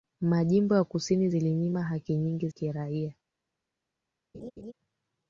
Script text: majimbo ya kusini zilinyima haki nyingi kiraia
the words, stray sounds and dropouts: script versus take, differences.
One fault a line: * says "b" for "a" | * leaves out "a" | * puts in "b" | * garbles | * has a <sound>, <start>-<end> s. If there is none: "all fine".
* has a laugh, 4.3-4.7 s